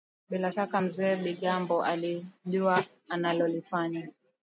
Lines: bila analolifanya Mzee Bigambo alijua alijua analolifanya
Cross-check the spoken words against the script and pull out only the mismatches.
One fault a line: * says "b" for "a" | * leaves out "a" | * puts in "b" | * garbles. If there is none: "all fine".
* says "shaka" for "analolifanya"
* leaves out "alijua"